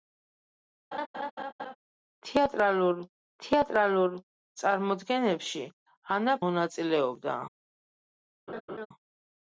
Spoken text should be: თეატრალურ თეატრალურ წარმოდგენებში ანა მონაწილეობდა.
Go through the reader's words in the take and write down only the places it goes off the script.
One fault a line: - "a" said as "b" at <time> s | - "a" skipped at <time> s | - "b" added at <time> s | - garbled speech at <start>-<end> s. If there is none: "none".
none